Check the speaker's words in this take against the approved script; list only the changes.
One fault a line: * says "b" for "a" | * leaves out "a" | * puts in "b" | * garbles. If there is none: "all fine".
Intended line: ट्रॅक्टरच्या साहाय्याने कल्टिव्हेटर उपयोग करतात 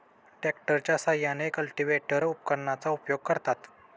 * puts in "उपकरणाचा"